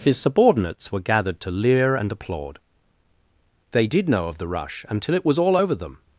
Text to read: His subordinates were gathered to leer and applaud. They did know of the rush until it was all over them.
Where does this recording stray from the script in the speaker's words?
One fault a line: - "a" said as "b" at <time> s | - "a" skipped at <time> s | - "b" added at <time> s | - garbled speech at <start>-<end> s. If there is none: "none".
none